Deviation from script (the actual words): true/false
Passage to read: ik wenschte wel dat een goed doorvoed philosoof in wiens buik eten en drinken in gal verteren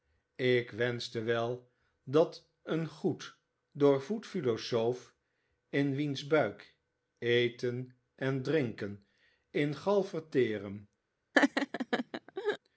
false